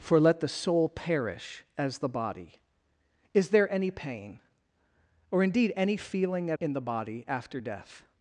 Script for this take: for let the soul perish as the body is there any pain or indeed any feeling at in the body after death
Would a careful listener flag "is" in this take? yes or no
no